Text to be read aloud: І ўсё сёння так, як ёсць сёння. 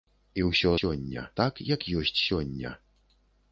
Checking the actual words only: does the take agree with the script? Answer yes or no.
yes